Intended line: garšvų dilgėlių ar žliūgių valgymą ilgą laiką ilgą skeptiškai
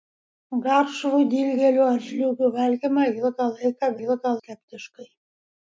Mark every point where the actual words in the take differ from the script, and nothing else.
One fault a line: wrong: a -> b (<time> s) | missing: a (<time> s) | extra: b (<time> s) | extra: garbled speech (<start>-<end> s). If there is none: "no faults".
no faults